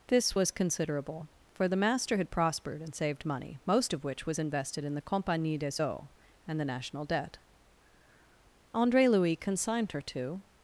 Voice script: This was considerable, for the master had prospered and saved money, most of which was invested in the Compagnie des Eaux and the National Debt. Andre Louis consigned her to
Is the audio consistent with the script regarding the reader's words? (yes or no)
yes